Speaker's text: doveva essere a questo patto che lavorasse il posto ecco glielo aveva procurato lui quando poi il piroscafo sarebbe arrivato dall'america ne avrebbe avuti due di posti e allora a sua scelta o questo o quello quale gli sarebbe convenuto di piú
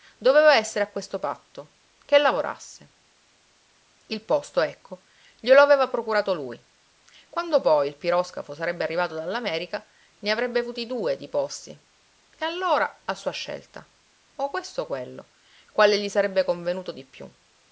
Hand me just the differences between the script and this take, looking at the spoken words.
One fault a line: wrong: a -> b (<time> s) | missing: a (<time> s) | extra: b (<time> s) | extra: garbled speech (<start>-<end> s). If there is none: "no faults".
no faults